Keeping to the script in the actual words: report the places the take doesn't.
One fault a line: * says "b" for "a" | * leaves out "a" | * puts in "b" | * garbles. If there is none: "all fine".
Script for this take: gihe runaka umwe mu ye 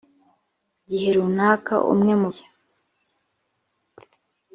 all fine